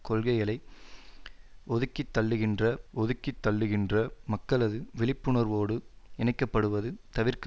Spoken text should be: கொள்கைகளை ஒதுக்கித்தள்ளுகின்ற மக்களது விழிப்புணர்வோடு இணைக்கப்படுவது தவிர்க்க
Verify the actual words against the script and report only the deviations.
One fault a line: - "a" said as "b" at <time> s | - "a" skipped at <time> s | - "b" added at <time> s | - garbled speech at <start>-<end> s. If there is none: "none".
- "ஒதுக்கித்தள்ளுகின்ற" added at 2.9 s